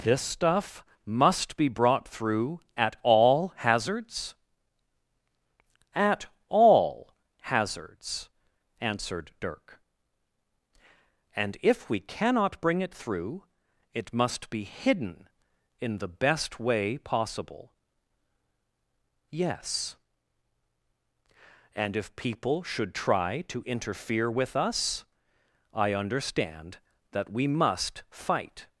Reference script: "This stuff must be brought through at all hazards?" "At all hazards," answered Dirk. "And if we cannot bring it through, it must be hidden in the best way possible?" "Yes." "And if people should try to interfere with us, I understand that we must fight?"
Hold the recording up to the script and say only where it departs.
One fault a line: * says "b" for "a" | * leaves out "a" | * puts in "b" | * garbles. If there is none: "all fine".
all fine